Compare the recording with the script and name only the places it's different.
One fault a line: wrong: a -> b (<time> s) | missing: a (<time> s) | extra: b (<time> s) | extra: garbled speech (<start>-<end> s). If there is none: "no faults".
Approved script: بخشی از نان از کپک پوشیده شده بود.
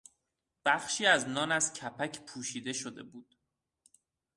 no faults